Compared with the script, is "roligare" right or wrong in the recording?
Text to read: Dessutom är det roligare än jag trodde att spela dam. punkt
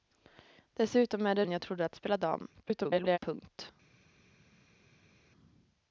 wrong